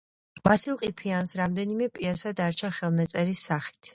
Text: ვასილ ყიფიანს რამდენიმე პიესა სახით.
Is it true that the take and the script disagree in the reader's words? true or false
true